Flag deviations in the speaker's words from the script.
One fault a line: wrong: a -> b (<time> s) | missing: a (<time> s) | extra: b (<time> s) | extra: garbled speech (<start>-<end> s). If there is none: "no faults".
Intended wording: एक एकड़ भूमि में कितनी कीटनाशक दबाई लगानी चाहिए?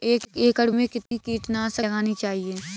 missing: भूमि (0.7 s)
missing: दबाई (1.9 s)